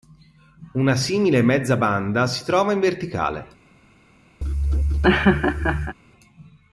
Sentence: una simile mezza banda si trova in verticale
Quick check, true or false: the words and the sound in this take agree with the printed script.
false